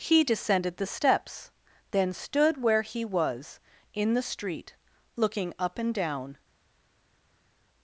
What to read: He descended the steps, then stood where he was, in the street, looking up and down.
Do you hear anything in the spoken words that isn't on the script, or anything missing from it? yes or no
no